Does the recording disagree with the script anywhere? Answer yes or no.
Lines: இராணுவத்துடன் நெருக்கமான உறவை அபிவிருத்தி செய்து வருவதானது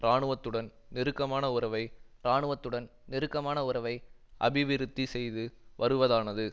yes